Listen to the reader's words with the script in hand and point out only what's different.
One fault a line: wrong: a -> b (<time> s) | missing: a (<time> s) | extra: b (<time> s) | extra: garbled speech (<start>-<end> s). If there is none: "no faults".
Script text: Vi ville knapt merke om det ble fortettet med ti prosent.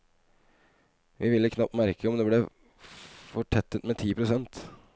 no faults